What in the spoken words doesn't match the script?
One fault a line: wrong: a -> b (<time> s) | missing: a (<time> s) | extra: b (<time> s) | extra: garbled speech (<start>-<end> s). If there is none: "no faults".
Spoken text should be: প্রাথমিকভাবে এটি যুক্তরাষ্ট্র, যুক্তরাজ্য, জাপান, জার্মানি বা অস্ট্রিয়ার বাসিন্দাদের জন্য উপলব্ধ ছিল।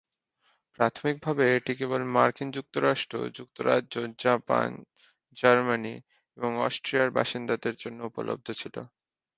extra: কেবল মার্কিন (1.8 s)
wrong: বা -> এবং (6.4 s)